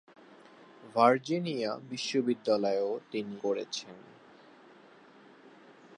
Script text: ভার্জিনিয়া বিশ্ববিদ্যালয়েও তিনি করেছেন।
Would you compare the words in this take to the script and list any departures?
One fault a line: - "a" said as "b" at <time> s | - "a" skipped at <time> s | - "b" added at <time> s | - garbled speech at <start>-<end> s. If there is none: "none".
none